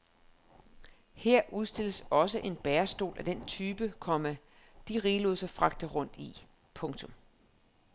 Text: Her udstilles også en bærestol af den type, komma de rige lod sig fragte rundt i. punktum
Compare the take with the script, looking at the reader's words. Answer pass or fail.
pass